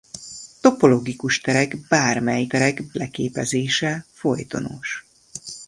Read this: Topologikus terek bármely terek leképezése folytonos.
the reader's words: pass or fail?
pass